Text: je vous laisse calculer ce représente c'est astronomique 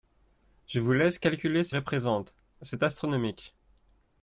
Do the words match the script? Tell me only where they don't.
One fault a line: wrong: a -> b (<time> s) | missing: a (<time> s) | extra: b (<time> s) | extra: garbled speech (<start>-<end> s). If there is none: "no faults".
no faults